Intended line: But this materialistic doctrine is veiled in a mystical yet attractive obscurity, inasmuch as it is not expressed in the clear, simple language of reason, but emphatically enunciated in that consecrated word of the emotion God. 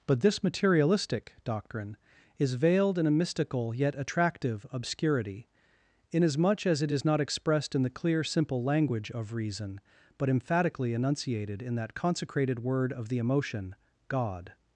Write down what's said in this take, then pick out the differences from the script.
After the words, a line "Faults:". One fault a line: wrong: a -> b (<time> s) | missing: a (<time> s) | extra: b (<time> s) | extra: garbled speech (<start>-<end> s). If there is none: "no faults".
But this materialistic doctrine is veiled in a mystical yet attractive obscurity, inasmuch as it is not expressed in the clear, simple language of reason, but emphatically enunciated in that consecrated word of the emotion God.
Faults:
no faults